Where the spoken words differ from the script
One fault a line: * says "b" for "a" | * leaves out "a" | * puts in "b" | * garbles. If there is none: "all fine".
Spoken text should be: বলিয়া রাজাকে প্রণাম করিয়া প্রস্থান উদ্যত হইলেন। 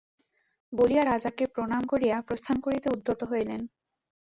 * puts in "করিতে"